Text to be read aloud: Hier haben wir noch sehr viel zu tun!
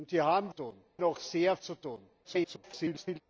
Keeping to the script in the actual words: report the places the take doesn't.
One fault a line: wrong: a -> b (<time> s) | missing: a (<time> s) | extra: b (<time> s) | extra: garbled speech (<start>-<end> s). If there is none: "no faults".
wrong: wir -> tun (0.5 s)
missing: viel (1.6 s)
extra: garbled speech (2.2-3.2 s)